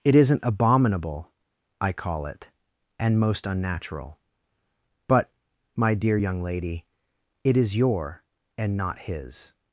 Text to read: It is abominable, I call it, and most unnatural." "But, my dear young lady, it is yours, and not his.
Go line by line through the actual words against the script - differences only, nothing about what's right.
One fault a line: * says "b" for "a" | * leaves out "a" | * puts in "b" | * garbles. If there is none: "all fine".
* says "isn't" for "is"
* says "your" for "yours"